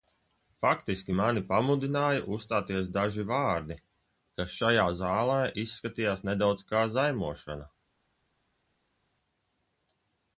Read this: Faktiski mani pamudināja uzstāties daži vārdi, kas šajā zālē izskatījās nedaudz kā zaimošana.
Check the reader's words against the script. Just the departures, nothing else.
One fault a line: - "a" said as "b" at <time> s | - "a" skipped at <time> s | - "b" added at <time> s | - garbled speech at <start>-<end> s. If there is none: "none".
none